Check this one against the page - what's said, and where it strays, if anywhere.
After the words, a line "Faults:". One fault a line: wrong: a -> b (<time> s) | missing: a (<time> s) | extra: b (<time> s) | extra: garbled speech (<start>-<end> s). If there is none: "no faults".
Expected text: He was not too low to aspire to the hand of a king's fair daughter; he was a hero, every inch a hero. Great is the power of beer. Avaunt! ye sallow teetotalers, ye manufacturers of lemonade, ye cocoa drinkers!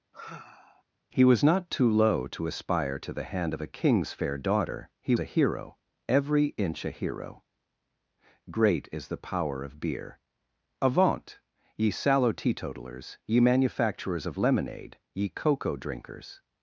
He was not too low to aspire to the hand of a king's fair daughter; he a hero, every inch a hero. Great is the power of beer. Avaunt! ye sallow teetotalers, ye manufacturers of lemonade, ye cocoa drinkers!
Faults:
missing: was (5.1 s)